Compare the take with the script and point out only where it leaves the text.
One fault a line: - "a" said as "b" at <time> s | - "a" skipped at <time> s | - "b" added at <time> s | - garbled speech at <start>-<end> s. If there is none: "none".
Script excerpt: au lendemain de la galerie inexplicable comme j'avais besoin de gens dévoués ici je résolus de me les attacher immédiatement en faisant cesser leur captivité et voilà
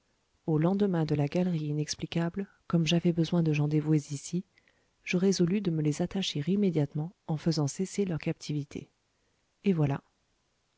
none